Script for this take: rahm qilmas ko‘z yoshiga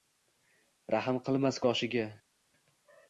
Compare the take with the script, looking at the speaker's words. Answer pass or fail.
fail